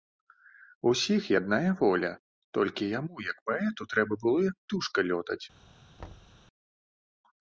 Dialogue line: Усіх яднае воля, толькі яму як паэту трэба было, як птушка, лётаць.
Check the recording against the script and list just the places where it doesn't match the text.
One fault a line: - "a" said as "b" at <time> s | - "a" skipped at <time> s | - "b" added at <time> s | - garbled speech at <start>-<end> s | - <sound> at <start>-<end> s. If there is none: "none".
- thud at 6.0-6.4 s